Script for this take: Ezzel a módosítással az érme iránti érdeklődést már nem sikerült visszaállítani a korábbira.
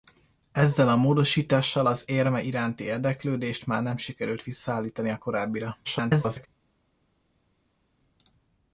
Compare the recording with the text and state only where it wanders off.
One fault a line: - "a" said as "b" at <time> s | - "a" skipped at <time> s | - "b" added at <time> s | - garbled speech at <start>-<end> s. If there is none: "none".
- garbled speech at 5.8-6.5 s